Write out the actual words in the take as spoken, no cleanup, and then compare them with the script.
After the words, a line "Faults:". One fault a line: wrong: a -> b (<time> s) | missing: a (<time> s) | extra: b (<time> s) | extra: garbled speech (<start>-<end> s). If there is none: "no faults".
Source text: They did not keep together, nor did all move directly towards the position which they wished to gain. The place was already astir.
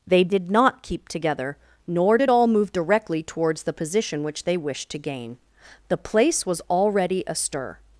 They did not keep together, nor did all move directly towards the position which they wished to gain. The place was already astir.
Faults:
no faults